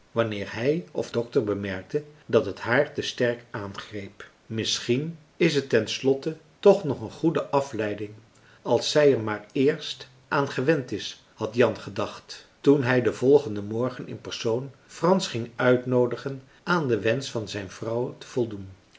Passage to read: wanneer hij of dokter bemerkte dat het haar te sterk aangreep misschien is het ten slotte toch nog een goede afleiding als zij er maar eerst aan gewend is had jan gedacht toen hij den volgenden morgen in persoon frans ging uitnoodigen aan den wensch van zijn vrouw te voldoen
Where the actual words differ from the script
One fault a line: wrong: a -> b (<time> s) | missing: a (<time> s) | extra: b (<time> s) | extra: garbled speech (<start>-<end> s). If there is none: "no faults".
no faults